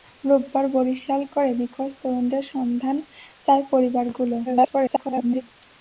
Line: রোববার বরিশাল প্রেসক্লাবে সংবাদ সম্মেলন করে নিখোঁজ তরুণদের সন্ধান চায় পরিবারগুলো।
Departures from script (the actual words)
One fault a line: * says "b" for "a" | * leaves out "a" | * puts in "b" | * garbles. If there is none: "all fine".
* leaves out "প্রেসক্লাবে সংবাদ সম্মেলন"
* garbles